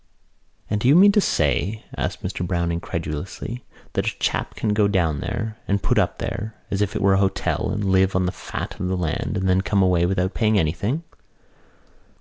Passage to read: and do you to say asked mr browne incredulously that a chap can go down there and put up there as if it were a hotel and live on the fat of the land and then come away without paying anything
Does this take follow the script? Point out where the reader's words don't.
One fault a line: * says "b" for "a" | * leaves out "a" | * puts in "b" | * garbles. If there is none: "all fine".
* puts in "mean"